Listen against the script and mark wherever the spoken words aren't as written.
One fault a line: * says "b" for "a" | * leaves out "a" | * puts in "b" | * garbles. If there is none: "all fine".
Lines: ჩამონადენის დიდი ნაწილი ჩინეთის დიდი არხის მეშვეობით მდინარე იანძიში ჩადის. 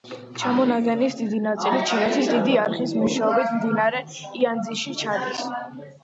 all fine